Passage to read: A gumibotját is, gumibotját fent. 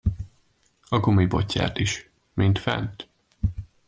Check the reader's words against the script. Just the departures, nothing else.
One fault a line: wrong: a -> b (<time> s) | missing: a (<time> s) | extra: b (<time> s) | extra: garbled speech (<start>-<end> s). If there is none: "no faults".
wrong: gumibotját -> mint (2.3 s)